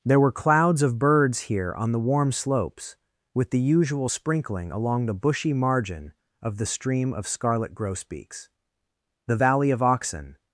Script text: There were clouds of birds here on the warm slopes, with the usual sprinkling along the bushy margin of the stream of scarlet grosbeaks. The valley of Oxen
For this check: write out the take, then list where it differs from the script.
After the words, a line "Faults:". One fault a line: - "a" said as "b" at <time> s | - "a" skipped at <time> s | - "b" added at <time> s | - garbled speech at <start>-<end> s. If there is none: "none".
There were clouds of birds here on the warm slopes, with the usual sprinkling along the bushy margin of the stream of scarlet grosbeaks. The valley of Oxen
Faults:
none